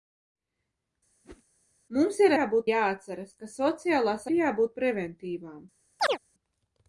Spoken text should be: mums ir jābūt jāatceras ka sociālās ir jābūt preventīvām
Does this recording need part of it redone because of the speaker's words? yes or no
no